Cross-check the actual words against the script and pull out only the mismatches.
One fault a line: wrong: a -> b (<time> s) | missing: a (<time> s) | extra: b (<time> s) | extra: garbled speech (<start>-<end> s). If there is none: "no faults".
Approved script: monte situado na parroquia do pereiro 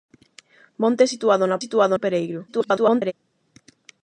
wrong: parroquia -> situado (1.6 s)
extra: garbled speech (2.5-3.1 s)